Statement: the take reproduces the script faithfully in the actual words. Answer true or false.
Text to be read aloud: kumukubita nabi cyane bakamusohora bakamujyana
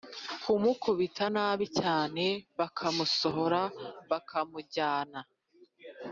true